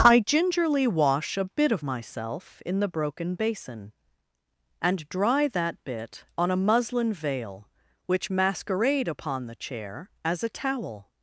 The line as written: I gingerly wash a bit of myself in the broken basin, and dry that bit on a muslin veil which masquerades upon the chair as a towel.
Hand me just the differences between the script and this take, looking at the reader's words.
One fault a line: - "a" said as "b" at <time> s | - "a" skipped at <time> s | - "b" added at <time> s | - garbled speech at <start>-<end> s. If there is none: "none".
- "masquerades" said as "masquerade" at 8.3 s